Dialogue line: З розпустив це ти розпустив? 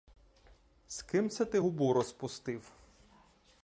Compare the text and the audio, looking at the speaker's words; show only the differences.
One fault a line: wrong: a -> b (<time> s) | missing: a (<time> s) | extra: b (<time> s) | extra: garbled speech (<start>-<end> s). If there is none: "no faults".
wrong: розпустив -> ким (1.0 s)
extra: губу (1.6 s)